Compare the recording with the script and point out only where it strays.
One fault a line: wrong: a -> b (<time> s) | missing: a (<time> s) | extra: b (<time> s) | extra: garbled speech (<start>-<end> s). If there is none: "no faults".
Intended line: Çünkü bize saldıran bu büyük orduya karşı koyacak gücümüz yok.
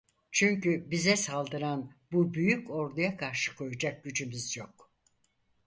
no faults